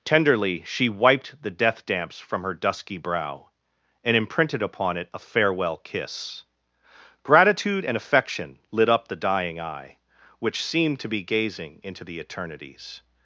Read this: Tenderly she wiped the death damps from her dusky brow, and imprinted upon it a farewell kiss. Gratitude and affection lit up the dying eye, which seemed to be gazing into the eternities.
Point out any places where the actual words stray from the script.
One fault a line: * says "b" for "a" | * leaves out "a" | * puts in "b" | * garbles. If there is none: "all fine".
all fine